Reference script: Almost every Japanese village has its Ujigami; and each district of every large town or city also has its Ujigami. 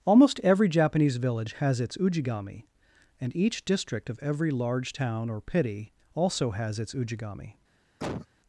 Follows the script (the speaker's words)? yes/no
no